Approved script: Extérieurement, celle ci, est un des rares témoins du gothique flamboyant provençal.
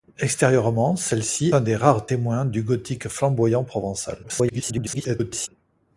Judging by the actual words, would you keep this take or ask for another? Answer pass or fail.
fail